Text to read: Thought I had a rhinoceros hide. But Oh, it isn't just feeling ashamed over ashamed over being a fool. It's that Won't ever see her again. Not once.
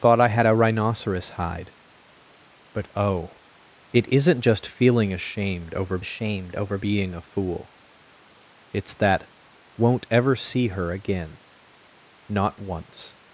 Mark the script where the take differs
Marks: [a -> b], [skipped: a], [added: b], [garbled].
Thought I had a rhinoceros hide. But Oh, it isn't just feeling ashamed over ashamed over being a fool. It's that Won't ever see her again. Not once.